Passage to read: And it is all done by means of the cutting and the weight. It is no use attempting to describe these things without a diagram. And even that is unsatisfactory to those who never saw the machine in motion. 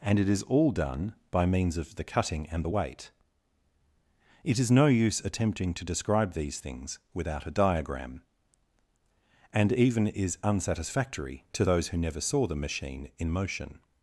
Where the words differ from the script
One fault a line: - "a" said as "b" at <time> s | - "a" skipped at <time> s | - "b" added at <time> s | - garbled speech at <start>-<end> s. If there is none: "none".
- "that" skipped at 10.1 s